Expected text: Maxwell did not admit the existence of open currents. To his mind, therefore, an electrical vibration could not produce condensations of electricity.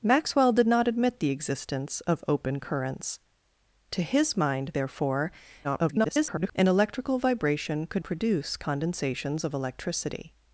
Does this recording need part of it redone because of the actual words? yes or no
yes